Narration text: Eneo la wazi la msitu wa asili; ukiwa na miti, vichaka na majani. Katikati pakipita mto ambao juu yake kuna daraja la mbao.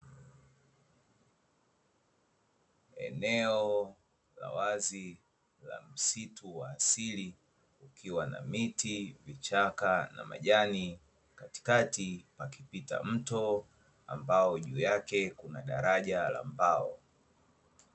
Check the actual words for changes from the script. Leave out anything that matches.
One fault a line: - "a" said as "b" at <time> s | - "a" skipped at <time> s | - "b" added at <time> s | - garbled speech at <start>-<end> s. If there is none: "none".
none